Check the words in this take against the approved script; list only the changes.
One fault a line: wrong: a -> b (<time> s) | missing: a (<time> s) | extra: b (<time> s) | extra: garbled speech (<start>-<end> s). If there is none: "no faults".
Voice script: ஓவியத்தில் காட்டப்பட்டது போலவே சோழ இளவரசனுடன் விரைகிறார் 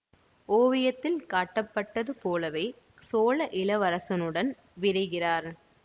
no faults